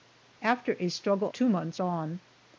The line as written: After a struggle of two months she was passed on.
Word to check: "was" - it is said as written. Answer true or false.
false